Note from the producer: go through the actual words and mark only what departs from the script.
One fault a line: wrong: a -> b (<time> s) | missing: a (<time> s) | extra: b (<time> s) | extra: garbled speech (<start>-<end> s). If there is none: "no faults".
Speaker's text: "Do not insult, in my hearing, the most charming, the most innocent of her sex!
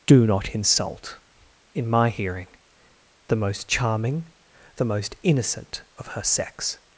no faults